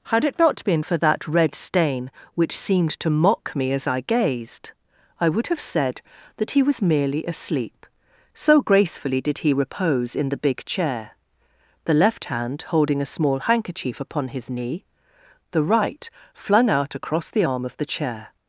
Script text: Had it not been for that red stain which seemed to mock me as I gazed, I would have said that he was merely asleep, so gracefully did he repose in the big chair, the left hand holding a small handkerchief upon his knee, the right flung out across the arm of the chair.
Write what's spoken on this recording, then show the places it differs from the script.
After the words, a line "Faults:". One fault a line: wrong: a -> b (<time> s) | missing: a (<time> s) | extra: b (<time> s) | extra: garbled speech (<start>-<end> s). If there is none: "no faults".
Had it not been for that red stain which seemed to mock me as I gazed, I would have said that he was merely asleep, so gracefully did he repose in the big chair, the left hand holding a small handkerchief upon his knee, the right flung out across the arm of the chair.
Faults:
no faults